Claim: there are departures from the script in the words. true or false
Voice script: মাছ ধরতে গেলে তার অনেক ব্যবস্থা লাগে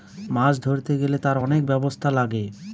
false